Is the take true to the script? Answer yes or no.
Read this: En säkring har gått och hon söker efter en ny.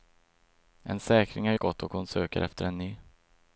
yes